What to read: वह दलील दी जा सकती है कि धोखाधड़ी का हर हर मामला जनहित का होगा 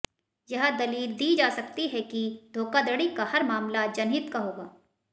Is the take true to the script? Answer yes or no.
no